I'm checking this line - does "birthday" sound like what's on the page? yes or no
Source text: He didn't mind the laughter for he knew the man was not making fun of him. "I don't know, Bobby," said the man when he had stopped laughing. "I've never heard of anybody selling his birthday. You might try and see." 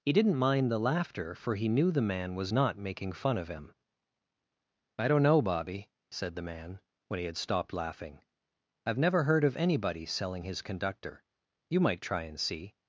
no